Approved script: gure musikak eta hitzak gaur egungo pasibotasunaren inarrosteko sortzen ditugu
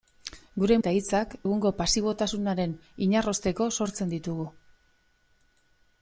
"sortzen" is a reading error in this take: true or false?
false